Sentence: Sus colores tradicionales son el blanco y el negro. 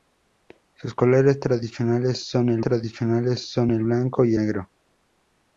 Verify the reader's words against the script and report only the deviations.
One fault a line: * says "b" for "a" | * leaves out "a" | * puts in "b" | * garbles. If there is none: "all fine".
* puts in "tradicionales son el"
* leaves out "el"